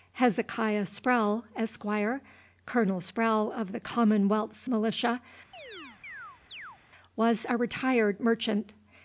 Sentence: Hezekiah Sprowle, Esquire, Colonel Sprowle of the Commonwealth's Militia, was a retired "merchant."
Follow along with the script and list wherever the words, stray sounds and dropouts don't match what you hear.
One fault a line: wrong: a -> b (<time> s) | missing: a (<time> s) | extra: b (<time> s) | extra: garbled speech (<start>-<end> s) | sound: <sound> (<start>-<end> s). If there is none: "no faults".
sound: chirp (5.5-6.8 s)